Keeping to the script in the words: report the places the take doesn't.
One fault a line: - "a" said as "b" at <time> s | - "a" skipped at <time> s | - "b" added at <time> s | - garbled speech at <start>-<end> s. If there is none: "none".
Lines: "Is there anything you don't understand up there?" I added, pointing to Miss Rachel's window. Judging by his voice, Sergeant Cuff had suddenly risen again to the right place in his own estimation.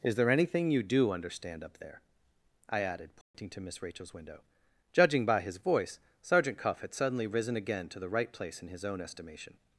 - "don't" said as "do" at 0.8 s